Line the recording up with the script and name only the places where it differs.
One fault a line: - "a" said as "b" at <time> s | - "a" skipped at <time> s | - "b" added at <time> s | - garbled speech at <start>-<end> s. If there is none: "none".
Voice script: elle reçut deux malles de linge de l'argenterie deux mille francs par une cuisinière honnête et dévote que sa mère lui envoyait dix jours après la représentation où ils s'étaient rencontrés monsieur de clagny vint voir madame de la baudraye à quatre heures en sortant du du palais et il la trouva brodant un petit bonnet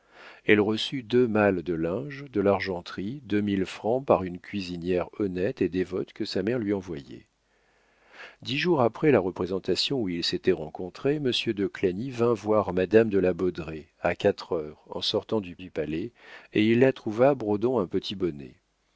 none